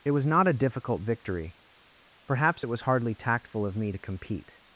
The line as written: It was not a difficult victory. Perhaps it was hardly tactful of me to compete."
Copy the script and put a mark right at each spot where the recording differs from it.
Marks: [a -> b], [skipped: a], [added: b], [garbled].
It was not a difficult victory. Perhaps it was hardly tactful of me to compete."